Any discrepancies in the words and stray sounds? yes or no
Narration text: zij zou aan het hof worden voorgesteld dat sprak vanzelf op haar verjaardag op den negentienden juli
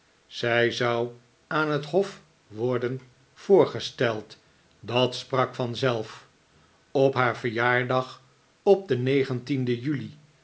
no